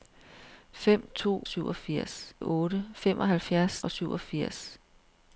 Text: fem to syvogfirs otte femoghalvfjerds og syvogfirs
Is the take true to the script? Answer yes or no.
yes